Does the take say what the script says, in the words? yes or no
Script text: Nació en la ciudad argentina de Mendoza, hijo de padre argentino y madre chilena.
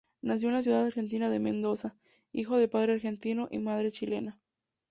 yes